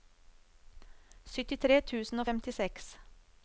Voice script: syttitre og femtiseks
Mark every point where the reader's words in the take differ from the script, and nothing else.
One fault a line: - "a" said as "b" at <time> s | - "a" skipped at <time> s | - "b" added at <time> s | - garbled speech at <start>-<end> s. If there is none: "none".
- "tusen" added at 1.9 s